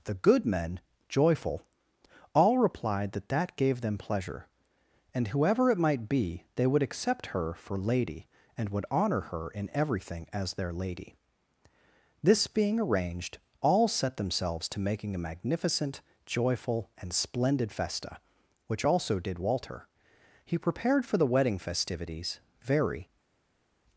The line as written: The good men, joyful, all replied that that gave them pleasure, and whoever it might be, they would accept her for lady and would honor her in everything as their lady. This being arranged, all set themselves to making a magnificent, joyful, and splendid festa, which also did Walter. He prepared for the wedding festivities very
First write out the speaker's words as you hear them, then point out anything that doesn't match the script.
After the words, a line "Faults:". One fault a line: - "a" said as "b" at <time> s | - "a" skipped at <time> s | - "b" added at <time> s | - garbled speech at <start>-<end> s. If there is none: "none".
The good men, joyful, all replied that that gave them pleasure, and whoever it might be, they would accept her for lady and would honor her in everything as their lady. This being arranged, all set themselves to making a magnificent, joyful, and splendid festa, which also did Walter. He prepared for the wedding festivities very
Faults:
none